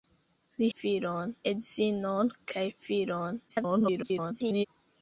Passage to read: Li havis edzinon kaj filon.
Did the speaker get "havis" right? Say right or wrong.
wrong